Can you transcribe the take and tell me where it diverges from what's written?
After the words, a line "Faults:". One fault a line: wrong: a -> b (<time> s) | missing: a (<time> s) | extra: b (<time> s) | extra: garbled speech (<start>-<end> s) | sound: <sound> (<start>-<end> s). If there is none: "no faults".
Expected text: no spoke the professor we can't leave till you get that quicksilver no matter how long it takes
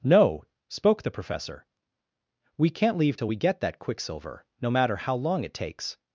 no spoke the professor we can't leave till we get that quicksilver no matter how long it takes
Faults:
wrong: you -> we (3.3 s)